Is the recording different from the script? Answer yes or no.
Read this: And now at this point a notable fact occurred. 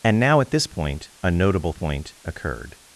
yes